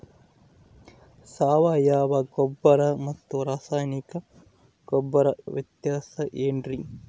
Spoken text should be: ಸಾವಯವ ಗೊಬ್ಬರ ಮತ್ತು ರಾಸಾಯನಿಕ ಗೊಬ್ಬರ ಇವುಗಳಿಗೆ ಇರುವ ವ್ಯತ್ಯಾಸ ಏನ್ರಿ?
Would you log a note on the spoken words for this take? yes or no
yes